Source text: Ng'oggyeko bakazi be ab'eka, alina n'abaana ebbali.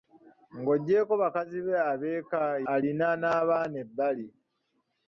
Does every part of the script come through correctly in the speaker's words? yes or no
yes